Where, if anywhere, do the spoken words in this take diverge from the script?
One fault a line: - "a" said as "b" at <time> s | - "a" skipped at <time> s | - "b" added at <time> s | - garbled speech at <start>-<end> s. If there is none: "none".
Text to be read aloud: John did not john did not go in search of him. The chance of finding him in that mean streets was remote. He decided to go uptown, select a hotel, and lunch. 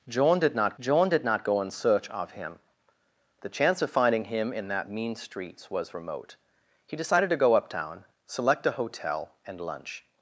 none